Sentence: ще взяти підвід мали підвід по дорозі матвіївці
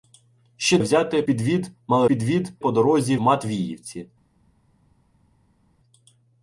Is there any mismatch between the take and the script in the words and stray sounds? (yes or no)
no